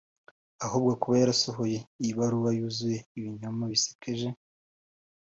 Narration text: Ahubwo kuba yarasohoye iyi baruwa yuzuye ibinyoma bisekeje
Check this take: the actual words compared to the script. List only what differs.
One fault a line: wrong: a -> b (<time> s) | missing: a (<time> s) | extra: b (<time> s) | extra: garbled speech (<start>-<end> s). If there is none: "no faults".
no faults